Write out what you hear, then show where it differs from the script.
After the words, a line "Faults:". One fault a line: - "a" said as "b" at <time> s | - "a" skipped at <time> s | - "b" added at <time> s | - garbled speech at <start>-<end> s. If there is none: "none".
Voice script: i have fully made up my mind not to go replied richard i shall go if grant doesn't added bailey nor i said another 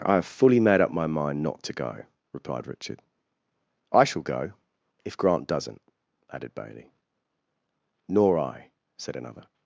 i have fully made up my mind not to go replied richard i shall go if grant doesn't added bailey nor i said another
Faults:
none